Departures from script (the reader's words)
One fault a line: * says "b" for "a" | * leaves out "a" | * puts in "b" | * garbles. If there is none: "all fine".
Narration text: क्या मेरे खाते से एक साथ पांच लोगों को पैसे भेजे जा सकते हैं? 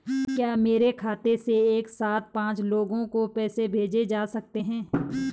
all fine